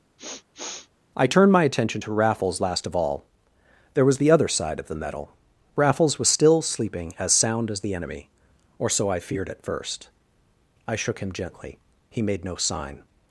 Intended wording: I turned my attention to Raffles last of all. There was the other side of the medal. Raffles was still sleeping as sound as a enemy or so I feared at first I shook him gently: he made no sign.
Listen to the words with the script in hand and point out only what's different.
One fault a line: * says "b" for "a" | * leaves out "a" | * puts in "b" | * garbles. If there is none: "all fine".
* says "the" for "a"